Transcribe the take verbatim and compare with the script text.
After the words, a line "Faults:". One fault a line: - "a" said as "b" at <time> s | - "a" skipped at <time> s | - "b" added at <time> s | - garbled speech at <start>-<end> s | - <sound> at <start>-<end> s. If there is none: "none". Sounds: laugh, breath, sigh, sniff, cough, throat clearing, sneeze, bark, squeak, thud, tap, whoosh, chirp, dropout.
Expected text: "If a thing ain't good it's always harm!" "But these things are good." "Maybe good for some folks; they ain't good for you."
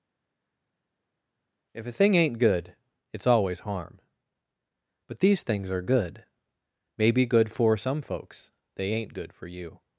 "If a thing ain't good it's always harm!" "But these things are good." "Maybe good for some folks; they ain't good for you."
Faults:
none